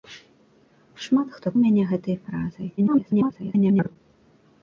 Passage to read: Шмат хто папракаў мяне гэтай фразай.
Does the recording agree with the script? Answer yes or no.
no